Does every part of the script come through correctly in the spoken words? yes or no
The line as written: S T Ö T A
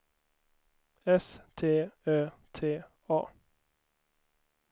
yes